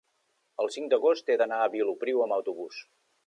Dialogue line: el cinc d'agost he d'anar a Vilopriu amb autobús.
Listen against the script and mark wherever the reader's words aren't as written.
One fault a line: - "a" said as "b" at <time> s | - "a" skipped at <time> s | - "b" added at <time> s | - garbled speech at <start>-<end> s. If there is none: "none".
none